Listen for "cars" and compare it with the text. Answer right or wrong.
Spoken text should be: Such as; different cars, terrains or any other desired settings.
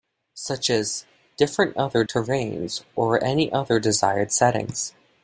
wrong